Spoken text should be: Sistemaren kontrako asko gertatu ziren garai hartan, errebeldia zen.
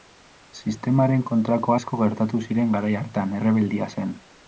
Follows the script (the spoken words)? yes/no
yes